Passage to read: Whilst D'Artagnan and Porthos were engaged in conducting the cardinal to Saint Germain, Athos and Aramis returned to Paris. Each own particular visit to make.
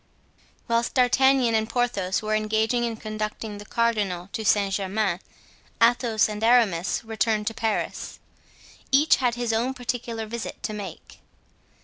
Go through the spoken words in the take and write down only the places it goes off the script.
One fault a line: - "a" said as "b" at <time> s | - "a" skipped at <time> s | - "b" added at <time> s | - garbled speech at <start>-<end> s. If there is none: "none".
- "had his" added at 9.2 s